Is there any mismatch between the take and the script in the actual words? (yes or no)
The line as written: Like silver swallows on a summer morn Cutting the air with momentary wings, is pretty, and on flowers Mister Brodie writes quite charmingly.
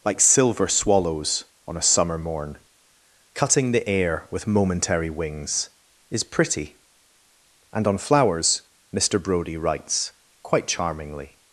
no